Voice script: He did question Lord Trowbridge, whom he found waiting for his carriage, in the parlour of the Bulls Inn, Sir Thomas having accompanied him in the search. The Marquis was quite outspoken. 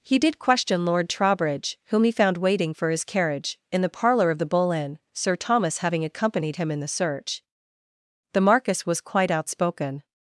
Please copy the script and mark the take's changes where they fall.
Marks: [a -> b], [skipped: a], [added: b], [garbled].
He did question Lord Trowbridge, whom he found waiting for his carriage, in the parlour of the [Bulls -> Bull] Inn, Sir Thomas having accompanied him in the search. The Marquis was quite outspoken.